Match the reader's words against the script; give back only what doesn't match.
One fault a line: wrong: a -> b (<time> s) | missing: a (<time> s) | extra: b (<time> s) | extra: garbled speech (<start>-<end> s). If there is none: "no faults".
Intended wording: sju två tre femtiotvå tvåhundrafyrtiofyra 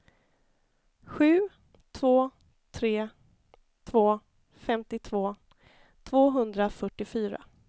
extra: två (3.8 s)